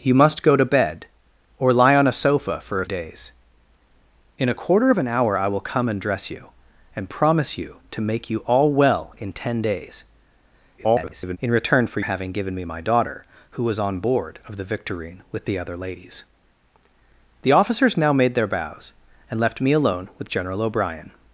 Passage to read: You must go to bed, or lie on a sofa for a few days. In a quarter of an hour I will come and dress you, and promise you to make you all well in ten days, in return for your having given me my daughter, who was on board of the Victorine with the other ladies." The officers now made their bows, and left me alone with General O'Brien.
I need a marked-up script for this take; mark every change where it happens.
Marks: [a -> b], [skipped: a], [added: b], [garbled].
You must go to bed, or lie on a sofa for a [skipped: few] days. In a quarter of an hour I will come and dress you, and promise you to make you all well in ten days, [garbled] in return for [skipped: your] having given me my daughter, who was on board of the Victorine with the other ladies." The officers now made their bows, and left me alone with General O'Brien.